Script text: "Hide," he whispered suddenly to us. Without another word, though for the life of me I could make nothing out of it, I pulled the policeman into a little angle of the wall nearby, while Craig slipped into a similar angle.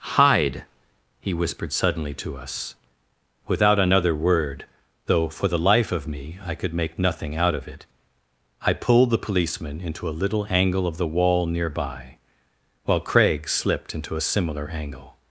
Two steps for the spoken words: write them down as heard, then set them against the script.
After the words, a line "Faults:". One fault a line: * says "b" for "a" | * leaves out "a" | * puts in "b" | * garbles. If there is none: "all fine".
"Hide," he whispered suddenly to us. Without another word, though for the life of me I could make nothing out of it, I pulled the policeman into a little angle of the wall nearby, while Craig slipped into a similar angle.
Faults:
all fine